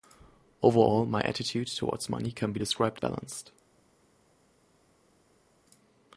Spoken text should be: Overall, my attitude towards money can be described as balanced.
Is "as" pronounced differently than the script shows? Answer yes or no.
yes